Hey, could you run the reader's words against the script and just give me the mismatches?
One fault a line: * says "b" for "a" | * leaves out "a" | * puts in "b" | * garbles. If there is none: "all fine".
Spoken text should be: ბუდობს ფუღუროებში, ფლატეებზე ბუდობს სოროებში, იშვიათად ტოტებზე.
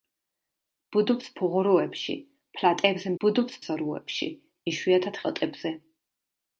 all fine